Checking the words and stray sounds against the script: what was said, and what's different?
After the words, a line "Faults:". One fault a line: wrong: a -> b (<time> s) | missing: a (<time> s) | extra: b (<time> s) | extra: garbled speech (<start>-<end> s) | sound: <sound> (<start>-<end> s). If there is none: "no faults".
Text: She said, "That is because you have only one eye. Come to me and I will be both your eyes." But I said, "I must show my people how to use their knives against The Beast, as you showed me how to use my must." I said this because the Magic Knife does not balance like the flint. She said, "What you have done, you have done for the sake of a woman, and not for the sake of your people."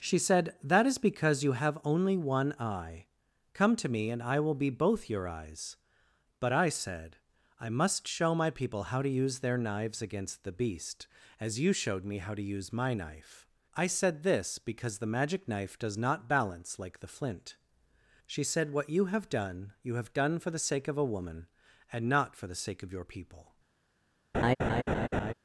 She said, "That is because you have only one eye. Come to me and I will be both your eyes." But I said, "I must show my people how to use their knives against The Beast, as you showed me how to use my knife." I said this because the Magic Knife does not balance like the flint. She said, "What you have done, you have done for the sake of a woman, and not for the sake of your people."
Faults:
wrong: must -> knife (12.9 s)
sound: laugh (24.3-25.3 s)